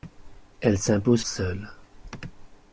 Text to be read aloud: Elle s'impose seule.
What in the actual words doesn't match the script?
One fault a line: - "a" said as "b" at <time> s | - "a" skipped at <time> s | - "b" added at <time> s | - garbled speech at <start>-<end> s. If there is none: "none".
none